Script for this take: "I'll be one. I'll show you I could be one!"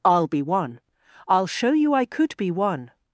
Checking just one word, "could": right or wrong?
right